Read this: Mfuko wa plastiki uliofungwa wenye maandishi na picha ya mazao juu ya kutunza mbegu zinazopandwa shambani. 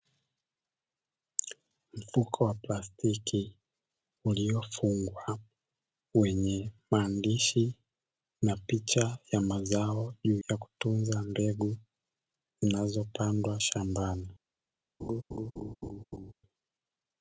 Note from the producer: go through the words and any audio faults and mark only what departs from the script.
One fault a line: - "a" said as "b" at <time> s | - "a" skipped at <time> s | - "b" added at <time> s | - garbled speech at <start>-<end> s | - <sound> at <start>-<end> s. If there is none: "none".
- laugh at 15.0-16.3 s